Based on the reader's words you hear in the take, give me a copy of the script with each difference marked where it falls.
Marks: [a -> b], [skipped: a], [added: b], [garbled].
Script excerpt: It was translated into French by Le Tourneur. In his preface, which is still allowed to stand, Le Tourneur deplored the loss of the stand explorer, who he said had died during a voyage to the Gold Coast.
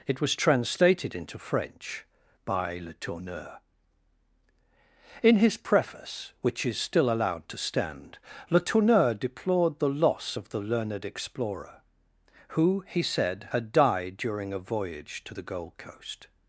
It was translated into French by Le Tourneur. In his preface, which is still allowed to stand, Le Tourneur deplored the loss of the [stand -> learned] explorer, who he said had died during a voyage to the Gold Coast.